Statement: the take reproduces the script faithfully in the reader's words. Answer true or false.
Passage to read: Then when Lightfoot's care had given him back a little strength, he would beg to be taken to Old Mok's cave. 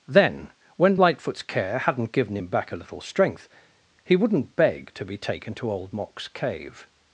false